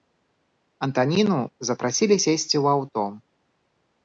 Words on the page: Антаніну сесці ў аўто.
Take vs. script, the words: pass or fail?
fail